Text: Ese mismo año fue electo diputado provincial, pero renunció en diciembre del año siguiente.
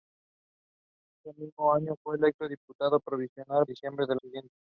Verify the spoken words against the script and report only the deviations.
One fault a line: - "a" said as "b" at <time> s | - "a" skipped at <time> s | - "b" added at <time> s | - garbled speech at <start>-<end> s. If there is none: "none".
- "pero renunció en" skipped at 3.5 s
- "año" skipped at 4.2 s